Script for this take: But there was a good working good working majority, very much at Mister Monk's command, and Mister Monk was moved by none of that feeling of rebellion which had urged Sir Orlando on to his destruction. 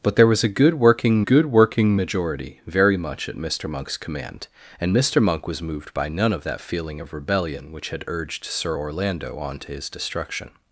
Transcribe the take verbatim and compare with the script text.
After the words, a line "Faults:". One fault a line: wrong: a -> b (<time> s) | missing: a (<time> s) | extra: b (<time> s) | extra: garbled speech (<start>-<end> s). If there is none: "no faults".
But there was a good working good working majority, very much at Mister Monk's command, and Mister Monk was moved by none of that feeling of rebellion which had urged Sir Orlando on to his destruction.
Faults:
no faults